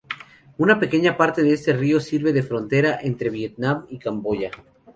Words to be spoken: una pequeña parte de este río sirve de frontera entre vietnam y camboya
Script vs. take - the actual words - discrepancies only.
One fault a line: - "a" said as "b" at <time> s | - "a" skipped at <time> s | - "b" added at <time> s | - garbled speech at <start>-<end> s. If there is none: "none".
none